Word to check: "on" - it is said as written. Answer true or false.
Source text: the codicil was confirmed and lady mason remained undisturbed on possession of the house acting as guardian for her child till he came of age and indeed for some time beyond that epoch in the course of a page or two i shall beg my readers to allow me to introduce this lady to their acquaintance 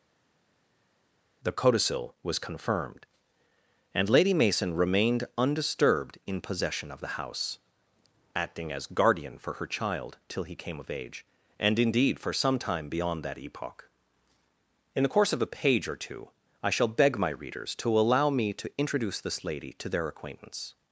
false